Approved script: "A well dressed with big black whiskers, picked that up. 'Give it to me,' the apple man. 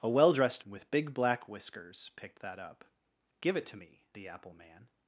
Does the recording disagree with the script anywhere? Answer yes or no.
no